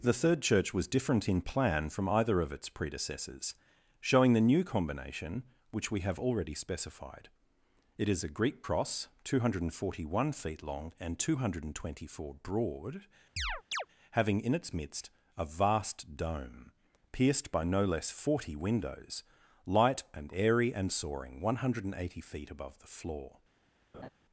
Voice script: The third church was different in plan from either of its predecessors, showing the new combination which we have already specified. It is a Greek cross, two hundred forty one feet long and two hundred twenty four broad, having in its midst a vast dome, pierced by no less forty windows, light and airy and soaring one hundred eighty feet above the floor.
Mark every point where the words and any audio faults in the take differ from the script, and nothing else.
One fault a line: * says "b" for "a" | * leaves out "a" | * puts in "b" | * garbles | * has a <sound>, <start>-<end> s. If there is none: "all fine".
* has a chirp, 13.4-13.9 s
* has a laugh, 23.9-24.1 s